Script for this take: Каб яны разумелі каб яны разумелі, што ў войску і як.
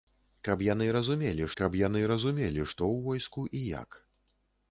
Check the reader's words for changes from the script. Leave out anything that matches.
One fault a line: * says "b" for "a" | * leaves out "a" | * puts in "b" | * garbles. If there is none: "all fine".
all fine